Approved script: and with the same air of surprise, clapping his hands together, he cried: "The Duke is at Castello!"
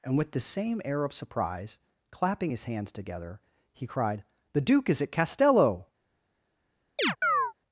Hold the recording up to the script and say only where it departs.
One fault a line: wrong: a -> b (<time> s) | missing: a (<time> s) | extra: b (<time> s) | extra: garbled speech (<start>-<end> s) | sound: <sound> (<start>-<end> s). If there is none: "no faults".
sound: chirp (7.0-7.5 s)